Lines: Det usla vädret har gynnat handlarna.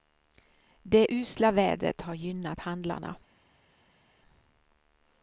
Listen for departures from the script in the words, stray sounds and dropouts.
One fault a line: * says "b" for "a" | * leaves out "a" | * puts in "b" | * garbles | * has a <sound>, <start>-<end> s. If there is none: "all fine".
all fine